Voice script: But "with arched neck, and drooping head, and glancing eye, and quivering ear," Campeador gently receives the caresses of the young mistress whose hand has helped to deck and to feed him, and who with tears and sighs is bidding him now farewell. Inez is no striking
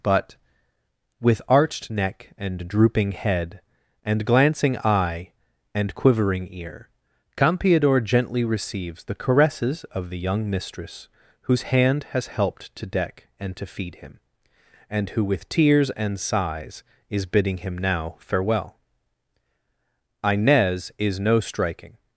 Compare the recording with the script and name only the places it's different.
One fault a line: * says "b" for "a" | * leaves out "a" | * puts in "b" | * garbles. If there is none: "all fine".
all fine